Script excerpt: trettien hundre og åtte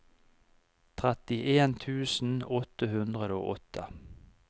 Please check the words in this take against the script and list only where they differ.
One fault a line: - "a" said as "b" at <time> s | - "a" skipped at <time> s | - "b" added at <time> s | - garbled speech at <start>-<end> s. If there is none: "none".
- "tusen åtte" added at 1.9 s